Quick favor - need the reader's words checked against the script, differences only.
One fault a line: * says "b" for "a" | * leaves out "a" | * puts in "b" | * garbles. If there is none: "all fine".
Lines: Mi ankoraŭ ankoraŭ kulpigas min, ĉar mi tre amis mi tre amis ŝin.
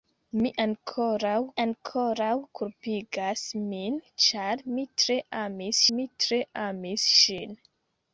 all fine